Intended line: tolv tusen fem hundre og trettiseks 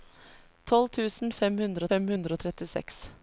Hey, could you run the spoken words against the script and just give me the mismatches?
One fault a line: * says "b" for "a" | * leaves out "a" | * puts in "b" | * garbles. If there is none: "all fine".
* puts in "fem hundre"